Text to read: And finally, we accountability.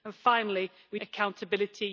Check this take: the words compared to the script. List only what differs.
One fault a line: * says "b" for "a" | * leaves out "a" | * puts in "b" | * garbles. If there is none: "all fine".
all fine